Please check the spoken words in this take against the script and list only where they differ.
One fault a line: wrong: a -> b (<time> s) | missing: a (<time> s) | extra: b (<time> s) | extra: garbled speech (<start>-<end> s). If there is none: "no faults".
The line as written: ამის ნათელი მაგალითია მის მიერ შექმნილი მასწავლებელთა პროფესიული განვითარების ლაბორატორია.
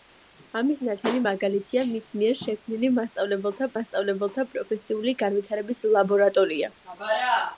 extra: მასწავლებელთა (3.8 s)